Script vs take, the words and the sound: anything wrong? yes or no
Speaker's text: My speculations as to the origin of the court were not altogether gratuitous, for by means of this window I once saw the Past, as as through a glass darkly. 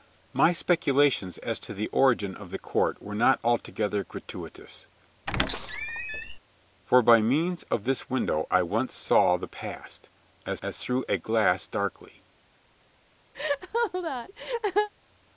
yes